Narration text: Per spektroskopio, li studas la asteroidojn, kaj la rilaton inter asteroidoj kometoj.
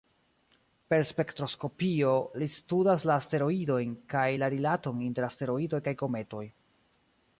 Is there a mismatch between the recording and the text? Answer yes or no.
yes